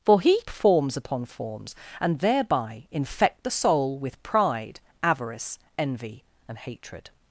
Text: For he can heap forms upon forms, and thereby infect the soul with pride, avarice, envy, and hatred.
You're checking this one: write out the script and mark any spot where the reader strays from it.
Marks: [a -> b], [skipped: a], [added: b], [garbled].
For he [skipped: can heap] forms upon forms, and thereby infect the soul with pride, avarice, envy, and hatred.